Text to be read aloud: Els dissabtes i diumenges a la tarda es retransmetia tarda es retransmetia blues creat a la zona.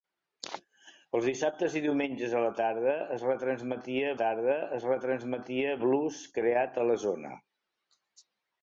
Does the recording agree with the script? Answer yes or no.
yes